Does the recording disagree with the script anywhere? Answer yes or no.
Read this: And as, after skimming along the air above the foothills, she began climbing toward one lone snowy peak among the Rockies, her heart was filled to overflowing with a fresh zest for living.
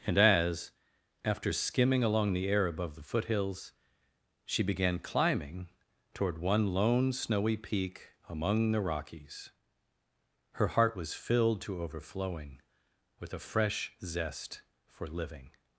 no